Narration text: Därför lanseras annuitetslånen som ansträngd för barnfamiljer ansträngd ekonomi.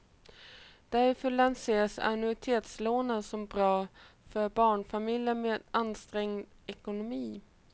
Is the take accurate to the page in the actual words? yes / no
no